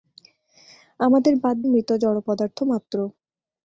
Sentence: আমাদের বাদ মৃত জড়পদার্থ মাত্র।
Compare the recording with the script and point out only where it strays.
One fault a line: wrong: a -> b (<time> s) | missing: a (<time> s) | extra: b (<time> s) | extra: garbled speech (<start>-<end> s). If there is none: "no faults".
no faults